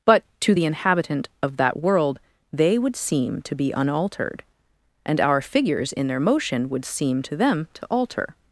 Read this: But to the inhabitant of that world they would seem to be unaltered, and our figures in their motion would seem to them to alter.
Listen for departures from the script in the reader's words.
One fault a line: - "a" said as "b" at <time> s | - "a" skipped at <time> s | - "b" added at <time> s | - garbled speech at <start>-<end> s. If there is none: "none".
none